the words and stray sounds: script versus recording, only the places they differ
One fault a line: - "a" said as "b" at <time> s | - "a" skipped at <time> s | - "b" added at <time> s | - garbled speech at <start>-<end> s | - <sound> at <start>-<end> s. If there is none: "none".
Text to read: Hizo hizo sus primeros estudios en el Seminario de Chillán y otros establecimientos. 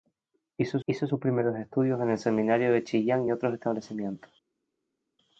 none